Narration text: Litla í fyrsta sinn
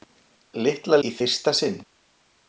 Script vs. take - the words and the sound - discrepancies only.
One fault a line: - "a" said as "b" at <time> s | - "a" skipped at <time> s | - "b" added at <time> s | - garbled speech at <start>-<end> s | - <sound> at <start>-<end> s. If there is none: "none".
none